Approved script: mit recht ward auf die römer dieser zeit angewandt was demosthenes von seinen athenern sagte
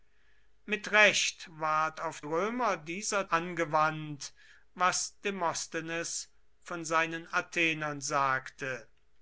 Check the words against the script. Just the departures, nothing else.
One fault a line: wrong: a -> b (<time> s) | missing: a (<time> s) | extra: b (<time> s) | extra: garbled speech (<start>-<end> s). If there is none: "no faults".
missing: die (2.2 s)
missing: zeit (3.3 s)